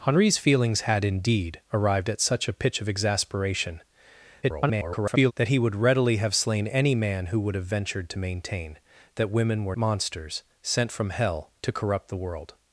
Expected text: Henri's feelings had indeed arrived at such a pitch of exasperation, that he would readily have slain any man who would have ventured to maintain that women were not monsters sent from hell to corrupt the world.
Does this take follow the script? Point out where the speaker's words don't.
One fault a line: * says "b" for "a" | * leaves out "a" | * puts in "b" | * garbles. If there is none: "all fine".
* garbles
* leaves out "not"